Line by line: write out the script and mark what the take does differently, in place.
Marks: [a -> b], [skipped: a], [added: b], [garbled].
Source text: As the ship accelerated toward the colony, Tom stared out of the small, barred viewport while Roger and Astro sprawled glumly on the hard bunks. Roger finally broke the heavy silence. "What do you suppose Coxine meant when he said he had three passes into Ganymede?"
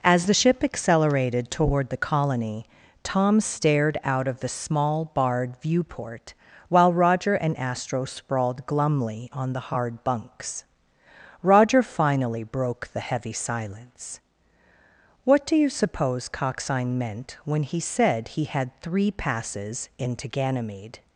As the ship accelerated toward the colony, Tom stared out of the small, barred viewport while Roger and Astro sprawled glumly on the hard bunks. Roger finally broke the heavy silence. "What do you suppose Coxine meant when he said he had three passes into Ganymede?"